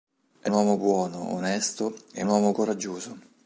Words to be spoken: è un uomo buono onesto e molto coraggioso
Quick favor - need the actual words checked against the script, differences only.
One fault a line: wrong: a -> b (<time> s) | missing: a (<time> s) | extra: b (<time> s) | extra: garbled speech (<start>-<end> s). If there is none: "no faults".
missing: un (0.5 s)
wrong: molto -> uomo (2.2 s)